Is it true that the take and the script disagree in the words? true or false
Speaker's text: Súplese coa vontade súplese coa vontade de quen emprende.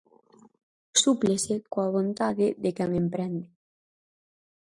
true